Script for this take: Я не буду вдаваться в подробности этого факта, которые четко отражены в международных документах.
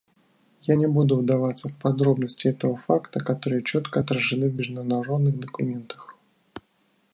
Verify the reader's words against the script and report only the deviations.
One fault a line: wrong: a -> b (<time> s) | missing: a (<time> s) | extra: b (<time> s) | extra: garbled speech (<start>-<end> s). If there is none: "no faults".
no faults